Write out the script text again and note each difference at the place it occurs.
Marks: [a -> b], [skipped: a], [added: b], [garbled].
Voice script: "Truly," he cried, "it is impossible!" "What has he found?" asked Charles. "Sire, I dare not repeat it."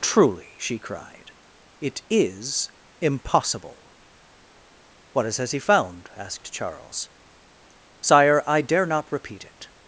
"Truly," [he -> she] cried, "it is impossible!" "What has he found?" asked Charles. "Sire, I dare not repeat it."